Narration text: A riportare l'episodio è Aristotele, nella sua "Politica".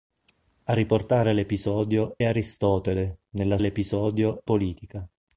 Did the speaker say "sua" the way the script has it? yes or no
no